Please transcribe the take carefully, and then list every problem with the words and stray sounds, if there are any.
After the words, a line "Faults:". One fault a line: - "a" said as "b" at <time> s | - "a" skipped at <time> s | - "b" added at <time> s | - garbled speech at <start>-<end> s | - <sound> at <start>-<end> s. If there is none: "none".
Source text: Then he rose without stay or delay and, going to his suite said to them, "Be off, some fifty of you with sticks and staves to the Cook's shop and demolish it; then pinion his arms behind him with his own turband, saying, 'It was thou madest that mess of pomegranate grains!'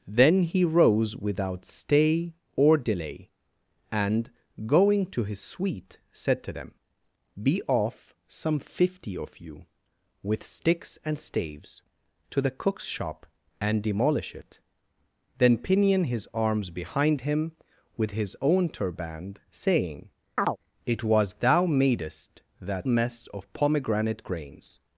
Then he rose without stay or delay and, going to his suite said to them, "Be off, some fifty of you with sticks and staves to the Cook's shop and demolish it; then pinion his arms behind him with his own turband, saying, 'It was thou madest that mess of pomegranate grains!'
Faults:
- chirp at 20.4-20.6 s